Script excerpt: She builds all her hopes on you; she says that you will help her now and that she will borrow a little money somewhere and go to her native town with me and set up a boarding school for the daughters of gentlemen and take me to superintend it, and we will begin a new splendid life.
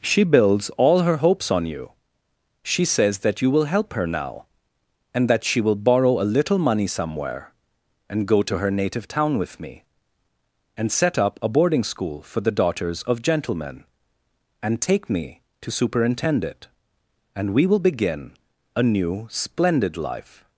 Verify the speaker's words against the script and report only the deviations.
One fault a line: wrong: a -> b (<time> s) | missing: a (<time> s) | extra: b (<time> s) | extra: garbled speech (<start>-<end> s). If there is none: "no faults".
no faults